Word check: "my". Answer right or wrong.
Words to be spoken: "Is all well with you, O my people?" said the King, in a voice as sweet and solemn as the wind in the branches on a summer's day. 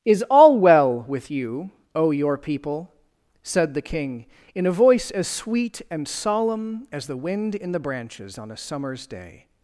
wrong